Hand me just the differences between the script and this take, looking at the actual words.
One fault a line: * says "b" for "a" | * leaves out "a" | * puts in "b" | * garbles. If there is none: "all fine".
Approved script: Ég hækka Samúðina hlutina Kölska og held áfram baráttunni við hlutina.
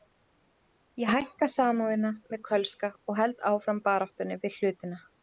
* says "með" for "hlutina"